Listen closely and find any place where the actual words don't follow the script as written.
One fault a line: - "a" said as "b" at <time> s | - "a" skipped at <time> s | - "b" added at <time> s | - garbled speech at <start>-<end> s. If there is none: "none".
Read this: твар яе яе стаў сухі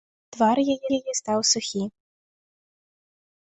none